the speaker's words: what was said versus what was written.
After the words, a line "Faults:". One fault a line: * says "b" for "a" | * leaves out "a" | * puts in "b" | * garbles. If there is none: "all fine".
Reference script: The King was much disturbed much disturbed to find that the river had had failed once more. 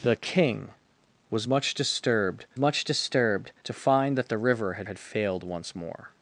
The King was much disturbed much disturbed to find that the river had had failed once more.
Faults:
all fine